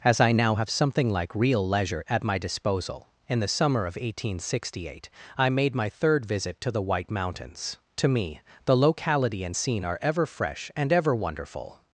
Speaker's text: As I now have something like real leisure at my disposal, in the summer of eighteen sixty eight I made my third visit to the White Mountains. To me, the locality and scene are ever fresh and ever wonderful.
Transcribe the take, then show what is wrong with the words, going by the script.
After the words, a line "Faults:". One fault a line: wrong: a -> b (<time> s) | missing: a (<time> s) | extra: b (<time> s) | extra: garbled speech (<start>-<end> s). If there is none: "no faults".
As I now have something like real leisure at my disposal, in the summer of eighteen sixty eight I made my third visit to the White Mountains. To me, the locality and scene are ever fresh and ever wonderful.
Faults:
no faults